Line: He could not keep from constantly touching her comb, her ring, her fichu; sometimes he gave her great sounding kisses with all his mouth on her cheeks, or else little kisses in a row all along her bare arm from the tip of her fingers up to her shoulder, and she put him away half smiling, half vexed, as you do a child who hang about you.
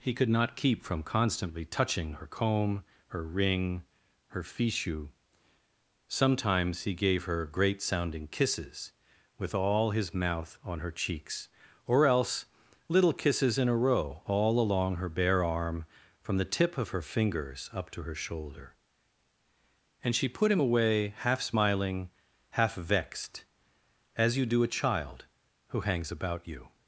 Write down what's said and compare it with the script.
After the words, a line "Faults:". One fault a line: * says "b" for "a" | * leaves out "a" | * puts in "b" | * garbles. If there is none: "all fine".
He could not keep from constantly touching her comb, her ring, her fichu; sometimes he gave her great sounding kisses with all his mouth on her cheeks, or else little kisses in a row all along her bare arm from the tip of her fingers up to her shoulder, and she put him away half smiling, half vexed, as you do a child who hangs about you.
Faults:
* says "hangs" for "hang"